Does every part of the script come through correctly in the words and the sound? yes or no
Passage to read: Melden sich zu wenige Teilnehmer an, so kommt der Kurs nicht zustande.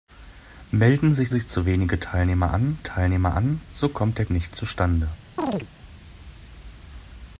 no